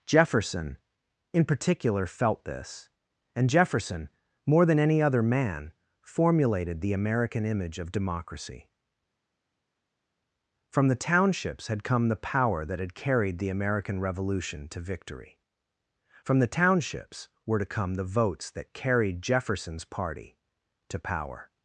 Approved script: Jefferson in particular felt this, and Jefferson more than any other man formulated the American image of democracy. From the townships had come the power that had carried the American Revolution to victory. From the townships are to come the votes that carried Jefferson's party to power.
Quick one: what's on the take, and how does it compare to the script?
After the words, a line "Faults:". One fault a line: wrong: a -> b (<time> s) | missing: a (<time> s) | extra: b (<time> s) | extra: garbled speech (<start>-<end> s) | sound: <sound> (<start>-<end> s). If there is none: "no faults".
Jefferson in particular felt this, and Jefferson more than any other man formulated the American image of democracy. From the townships had come the power that had carried the American Revolution to victory. From the townships were to come the votes that carried Jefferson's party to power.
Faults:
wrong: are -> were (17.4 s)